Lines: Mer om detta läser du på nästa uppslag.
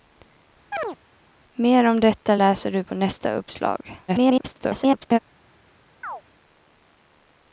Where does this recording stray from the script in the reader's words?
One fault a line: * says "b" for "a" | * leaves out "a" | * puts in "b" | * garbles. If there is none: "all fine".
* garbles